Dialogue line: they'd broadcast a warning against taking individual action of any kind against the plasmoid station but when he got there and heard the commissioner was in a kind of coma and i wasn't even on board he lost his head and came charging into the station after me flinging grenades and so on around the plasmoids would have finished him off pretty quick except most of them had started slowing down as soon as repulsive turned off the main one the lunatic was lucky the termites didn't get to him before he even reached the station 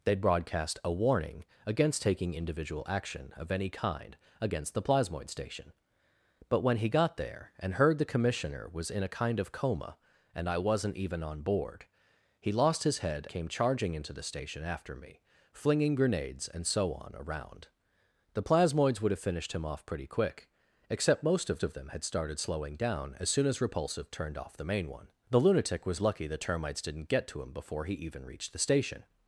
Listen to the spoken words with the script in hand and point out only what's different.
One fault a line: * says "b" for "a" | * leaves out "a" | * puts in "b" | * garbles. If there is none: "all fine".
* leaves out "and"
* puts in "of"